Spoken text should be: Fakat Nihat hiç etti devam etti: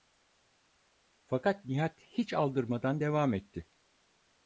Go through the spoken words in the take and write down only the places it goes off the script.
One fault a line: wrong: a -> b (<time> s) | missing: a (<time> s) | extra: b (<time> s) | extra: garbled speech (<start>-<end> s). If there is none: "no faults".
wrong: etti -> aldırmadan (2.3 s)